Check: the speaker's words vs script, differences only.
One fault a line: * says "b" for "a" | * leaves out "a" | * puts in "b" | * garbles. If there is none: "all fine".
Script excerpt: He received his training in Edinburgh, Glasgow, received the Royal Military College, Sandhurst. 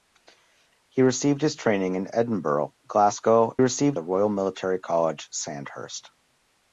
all fine